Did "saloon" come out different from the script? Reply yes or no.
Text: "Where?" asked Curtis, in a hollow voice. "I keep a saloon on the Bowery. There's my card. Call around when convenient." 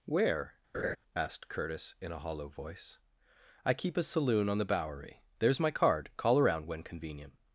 no